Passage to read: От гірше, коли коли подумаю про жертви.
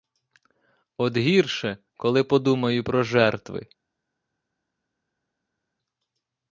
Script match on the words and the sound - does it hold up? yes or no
no